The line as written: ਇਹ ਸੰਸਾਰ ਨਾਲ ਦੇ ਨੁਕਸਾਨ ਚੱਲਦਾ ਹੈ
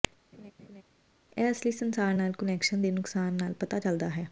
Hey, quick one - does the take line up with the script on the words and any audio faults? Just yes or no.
no